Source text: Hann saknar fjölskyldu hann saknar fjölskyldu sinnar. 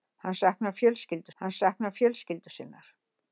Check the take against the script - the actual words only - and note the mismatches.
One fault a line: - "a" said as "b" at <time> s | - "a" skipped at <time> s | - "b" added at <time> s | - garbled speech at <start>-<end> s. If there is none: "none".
none